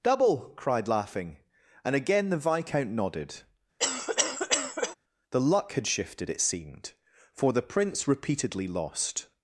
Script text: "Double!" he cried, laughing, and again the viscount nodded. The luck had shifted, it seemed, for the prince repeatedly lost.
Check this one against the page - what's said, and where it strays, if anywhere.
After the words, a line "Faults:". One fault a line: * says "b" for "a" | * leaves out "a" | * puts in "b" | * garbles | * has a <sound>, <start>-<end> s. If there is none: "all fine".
"Double!" cried, laughing, and again the viscount nodded. The luck had shifted, it seemed, for the prince repeatedly lost.
Faults:
* leaves out "he"
* has a cough, 3.8-4.9 s